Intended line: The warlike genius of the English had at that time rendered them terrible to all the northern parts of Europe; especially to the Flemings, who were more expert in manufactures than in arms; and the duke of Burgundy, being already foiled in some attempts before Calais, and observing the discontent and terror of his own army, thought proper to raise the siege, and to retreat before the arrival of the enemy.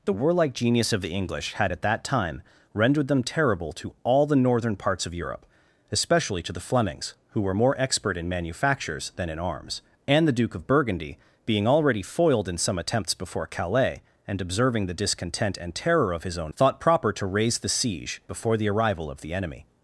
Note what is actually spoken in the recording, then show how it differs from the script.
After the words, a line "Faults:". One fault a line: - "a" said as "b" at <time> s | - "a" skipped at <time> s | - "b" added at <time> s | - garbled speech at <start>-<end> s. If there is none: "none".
The warlike genius of the English had at that time rendered them terrible to all the northern parts of Europe; especially to the Flemings, who were more expert in manufactures than in arms; and the duke of Burgundy, being already foiled in some attempts before Calais, and observing the discontent and terror of his own thought proper to raise the siege, before the arrival of the enemy.
Faults:
- "army" skipped at 16.5 s
- "and to retreat" skipped at 18.2 s